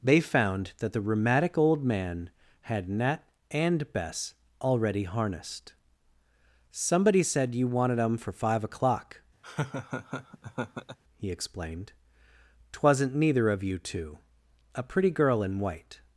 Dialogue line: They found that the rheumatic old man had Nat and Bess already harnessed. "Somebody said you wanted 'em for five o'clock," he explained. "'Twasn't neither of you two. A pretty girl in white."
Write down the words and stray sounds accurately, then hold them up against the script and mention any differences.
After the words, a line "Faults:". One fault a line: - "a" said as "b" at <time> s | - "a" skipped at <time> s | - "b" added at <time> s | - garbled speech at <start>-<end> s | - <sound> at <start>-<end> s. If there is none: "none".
They found that the rheumatic old man had Nat and Bess already harnessed. "Somebody said you wanted 'em for five o'clock," he explained. "'Twasn't neither of you two. A pretty girl in white."
Faults:
- laugh at 9.4-11.0 s